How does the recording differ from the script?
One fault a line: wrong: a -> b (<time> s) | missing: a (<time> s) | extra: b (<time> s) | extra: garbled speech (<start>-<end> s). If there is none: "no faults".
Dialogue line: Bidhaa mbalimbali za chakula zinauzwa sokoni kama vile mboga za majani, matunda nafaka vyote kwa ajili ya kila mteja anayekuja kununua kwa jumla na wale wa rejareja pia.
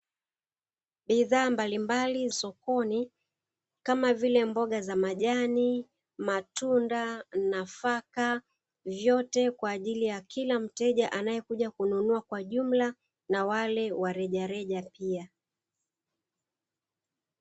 missing: za chakula zinauzwa (2.3 s)